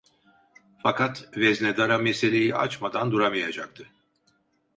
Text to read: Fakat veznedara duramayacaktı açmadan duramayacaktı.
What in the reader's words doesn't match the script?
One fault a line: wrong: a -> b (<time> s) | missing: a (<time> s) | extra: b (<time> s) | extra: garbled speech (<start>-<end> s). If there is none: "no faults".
wrong: duramayacaktı -> meseleyi (2.0 s)